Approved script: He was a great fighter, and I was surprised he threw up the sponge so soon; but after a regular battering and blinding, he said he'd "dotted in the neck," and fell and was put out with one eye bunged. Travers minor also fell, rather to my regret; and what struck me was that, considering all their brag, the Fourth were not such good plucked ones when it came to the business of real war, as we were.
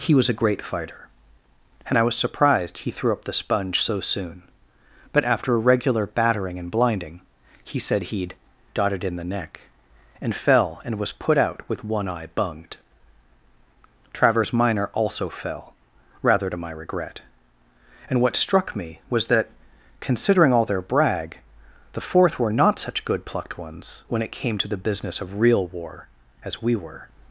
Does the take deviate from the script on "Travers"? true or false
false